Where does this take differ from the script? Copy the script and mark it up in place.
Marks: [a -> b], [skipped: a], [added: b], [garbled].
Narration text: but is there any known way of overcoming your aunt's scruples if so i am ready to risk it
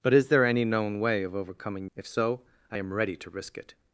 but is there any known way of overcoming [skipped: your aunt's scruples] if so i am ready to risk it